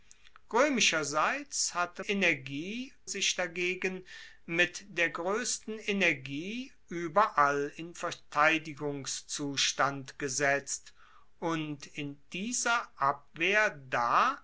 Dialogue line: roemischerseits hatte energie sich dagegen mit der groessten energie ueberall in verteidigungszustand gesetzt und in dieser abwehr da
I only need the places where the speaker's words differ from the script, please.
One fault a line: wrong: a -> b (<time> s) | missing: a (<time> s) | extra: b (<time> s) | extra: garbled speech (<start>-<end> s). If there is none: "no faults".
no faults